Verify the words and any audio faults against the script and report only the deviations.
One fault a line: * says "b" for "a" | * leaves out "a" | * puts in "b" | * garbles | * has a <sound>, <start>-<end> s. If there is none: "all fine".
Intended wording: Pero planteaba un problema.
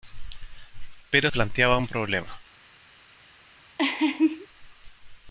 * has a laugh, 3.8-4.5 s